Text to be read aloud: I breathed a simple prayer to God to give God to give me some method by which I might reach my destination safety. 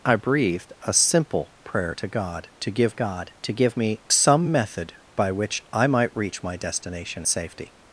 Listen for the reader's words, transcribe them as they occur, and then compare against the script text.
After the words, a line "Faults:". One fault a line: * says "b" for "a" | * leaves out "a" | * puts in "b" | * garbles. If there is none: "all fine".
I breathed a simple prayer to God to give God to give me some method by which I might reach my destination safety.
Faults:
all fine